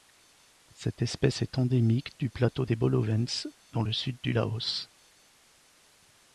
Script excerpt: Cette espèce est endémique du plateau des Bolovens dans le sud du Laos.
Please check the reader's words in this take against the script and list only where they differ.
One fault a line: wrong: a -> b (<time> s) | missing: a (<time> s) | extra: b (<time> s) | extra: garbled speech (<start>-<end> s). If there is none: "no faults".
no faults